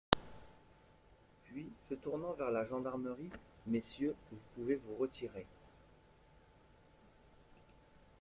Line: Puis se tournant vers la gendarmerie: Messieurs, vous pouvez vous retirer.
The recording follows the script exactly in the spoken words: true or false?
true